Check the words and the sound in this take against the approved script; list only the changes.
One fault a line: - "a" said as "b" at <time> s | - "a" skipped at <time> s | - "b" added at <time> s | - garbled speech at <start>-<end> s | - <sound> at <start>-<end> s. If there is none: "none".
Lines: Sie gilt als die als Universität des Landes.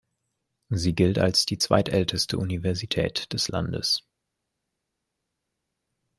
- "als" said as "zweitälteste" at 1.6 s